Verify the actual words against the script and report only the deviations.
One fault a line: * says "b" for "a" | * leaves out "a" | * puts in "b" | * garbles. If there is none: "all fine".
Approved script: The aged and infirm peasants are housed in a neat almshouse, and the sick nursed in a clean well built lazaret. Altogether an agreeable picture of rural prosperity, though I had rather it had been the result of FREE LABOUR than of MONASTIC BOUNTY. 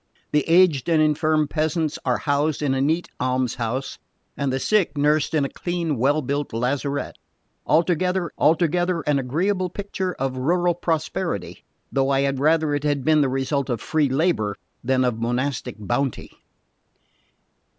* puts in "altogether"